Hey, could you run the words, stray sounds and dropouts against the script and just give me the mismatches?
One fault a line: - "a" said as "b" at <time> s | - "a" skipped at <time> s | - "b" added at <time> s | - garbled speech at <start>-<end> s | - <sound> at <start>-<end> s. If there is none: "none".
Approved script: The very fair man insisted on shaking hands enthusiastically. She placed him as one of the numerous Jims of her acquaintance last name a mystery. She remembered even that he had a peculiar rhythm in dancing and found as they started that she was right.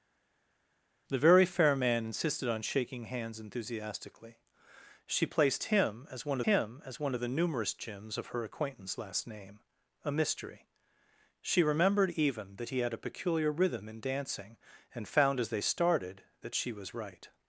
- "him as one" added at 6.4 s